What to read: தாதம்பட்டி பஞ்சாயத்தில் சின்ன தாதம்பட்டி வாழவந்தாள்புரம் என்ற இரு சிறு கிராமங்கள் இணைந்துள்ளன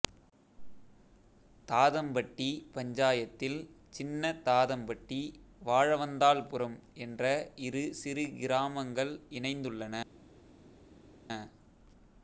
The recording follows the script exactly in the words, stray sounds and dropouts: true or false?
true